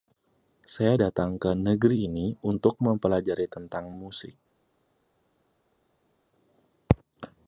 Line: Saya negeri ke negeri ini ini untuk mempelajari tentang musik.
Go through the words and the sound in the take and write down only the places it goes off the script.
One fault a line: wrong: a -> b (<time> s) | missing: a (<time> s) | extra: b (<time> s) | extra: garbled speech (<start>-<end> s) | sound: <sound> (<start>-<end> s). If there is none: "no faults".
wrong: negeri -> datang (1.0 s)
missing: ini (2.3 s)